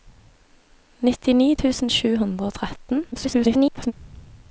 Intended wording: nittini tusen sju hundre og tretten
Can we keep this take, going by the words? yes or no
no